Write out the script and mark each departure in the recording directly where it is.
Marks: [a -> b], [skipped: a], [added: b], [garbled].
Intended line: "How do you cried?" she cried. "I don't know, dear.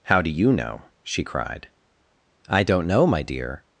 "How do you [cried?" -> know] she cried. "I don't know, [added: my] dear.